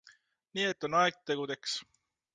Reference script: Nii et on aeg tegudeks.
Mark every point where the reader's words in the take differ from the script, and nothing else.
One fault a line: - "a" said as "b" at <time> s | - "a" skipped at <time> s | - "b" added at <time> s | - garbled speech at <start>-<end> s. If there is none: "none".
none